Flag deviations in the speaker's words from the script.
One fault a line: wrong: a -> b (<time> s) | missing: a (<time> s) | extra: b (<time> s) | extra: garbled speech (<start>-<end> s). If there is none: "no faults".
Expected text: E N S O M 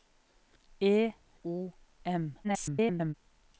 missing: N S (1.1 s)
extra: garbled speech (2.4-3.1 s)